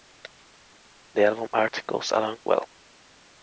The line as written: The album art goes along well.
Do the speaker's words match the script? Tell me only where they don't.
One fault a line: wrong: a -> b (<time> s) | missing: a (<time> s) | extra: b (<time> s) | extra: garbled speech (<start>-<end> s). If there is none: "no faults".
no faults